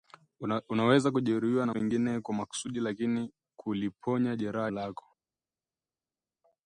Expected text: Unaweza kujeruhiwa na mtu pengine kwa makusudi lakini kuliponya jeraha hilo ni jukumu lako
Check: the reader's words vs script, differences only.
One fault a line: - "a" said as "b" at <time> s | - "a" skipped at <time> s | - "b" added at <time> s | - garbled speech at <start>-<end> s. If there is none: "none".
- "mtu" skipped at 1.7 s
- "hilo ni jukumu" skipped at 4.7 s